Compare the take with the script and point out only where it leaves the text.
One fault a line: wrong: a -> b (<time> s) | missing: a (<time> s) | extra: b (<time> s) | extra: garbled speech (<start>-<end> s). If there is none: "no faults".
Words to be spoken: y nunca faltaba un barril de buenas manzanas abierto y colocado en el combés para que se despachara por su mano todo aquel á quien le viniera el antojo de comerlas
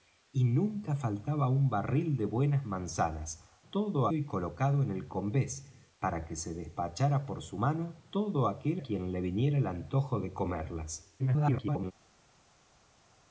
wrong: abierto -> todo (3.7 s)
missing: á (8.8 s)
extra: garbled speech (11.2-11.9 s)